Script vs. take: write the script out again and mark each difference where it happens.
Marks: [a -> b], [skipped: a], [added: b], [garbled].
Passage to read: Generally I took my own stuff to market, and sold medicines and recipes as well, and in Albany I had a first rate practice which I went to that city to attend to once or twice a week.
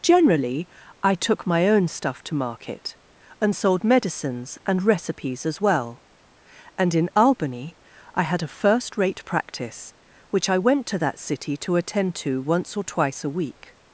Generally I took my own stuff to market, and sold medicines and recipes as well, and in Albany I had a first rate practice which I went to that city to attend to once or twice a week.